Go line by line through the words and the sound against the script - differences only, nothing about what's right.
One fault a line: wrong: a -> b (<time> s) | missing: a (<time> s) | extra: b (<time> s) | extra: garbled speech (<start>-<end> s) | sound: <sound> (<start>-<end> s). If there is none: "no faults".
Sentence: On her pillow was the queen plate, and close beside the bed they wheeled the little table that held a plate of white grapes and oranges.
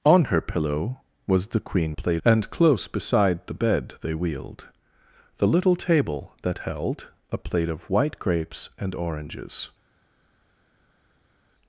no faults